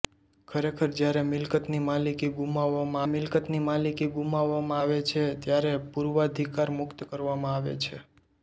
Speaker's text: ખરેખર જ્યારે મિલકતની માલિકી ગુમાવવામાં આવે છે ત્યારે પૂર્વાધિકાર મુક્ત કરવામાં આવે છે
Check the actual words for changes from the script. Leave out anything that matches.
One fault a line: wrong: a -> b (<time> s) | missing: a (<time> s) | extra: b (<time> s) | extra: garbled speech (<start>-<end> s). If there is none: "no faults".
extra: મિલકતની માલિકી ગુમાવવામાં (3.1 s)